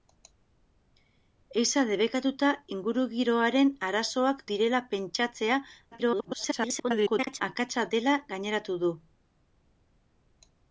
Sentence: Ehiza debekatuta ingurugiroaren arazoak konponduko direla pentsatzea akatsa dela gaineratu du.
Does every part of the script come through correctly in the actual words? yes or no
no